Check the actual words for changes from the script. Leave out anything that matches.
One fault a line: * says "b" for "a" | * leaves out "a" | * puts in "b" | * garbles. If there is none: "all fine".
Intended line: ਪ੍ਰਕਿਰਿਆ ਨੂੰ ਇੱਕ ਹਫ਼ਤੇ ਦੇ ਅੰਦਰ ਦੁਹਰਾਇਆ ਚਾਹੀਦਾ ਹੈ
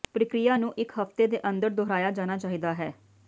* puts in "ਜਾਣਾ"